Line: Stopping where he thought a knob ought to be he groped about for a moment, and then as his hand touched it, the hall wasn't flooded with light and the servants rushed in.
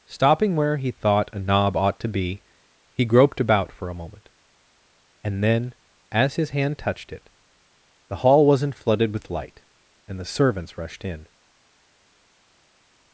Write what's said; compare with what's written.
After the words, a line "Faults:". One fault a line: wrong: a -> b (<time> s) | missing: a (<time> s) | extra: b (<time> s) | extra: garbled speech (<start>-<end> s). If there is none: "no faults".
Stopping where he thought a knob ought to be he groped about for a moment, and then as his hand touched it, the hall wasn't flooded with light and the servants rushed in.
Faults:
no faults